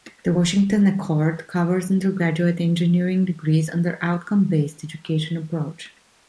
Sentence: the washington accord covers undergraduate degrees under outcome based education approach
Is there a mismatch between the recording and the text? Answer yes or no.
yes